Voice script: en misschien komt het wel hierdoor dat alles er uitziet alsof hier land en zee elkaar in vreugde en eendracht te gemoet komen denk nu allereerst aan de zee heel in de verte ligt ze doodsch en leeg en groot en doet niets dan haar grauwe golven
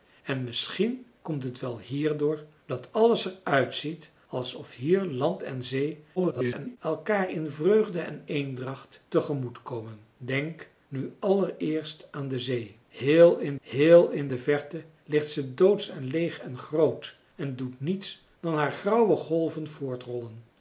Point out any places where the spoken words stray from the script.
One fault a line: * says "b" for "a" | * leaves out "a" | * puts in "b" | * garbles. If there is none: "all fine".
* garbles
* puts in "heel in"